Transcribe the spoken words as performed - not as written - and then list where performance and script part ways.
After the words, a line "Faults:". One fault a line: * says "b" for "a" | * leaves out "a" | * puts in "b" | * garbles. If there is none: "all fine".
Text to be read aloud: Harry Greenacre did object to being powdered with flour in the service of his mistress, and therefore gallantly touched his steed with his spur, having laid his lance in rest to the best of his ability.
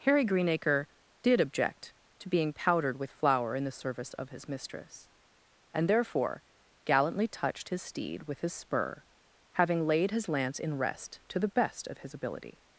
Harry Greenacre did object to being powdered with flour in the service of his mistress, and therefore gallantly touched his steed with his spur, having laid his lance in rest to the best of his ability.
Faults:
all fine